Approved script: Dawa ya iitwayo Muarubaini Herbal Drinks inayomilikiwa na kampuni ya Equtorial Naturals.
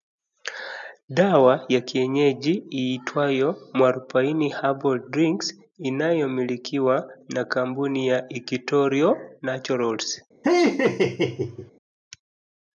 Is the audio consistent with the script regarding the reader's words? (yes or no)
no